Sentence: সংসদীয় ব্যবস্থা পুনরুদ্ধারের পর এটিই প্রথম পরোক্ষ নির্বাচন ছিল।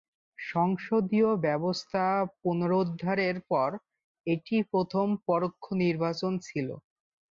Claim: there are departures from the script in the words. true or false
false